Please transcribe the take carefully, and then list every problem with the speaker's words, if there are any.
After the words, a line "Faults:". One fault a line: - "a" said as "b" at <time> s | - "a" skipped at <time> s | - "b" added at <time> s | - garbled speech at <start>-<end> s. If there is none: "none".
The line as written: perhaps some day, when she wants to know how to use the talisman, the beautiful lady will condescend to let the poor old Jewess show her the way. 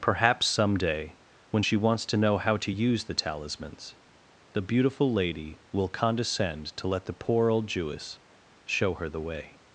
perhaps some day, when she wants to know how to use the talismans, the beautiful lady will condescend to let the poor old Jewess show her the way.
Faults:
- "talisman" said as "talismans" at 3.1 s